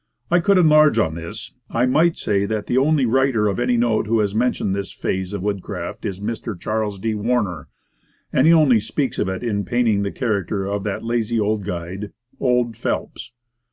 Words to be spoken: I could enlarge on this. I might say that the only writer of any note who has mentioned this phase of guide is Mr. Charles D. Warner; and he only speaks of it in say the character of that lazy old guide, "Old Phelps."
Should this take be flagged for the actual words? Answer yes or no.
yes